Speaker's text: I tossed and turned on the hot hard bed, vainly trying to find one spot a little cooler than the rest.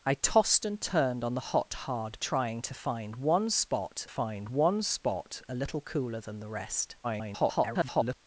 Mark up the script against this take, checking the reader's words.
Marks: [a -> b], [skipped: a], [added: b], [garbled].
I tossed and turned on the hot hard [bed, vainly trying to -> trying to find one spot] find one spot a little cooler than the rest. [garbled]